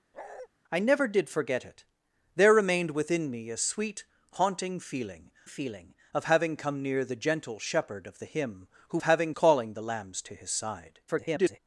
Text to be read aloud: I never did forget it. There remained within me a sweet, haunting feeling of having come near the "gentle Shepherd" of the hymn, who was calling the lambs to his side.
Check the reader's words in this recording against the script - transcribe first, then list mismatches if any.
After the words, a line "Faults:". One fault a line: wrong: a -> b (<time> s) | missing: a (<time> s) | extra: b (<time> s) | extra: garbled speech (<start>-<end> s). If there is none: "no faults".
I never did forget it. There remained within me a sweet, haunting feeling feeling of having come near the "gentle Shepherd" of the hymn, who having calling the lambs to his side. [garbled]
Faults:
extra: feeling (5.5 s)
wrong: was -> having (9.0 s)
extra: garbled speech (11.1-11.6 s)